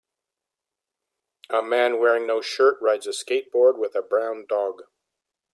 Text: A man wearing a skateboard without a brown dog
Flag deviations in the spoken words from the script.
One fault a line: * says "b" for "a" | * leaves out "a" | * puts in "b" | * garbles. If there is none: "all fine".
* puts in "no shirt rides"
* says "with" for "without"